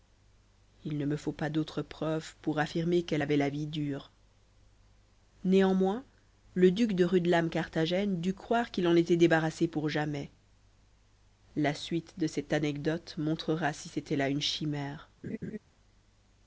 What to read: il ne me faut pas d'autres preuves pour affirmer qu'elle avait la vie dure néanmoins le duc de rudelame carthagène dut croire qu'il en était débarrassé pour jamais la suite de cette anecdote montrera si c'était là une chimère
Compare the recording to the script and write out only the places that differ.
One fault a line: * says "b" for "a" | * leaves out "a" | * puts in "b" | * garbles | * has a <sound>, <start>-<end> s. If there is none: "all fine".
* has a laugh, 15.2-15.6 s